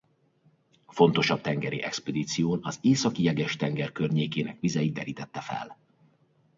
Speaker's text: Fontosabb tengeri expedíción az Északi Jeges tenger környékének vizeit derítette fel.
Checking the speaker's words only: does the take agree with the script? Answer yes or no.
yes